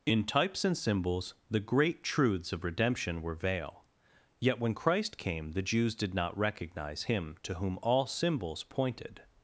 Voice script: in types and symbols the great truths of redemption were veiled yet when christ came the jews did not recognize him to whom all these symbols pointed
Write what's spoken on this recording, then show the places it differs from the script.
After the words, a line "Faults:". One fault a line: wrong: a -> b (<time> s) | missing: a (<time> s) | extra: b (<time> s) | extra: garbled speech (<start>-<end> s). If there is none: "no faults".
in types and symbols the great truths of redemption were veil yet when christ came the jews did not recognize him to whom all symbols pointed
Faults:
wrong: veiled -> veil (3.4 s)
missing: these (8.1 s)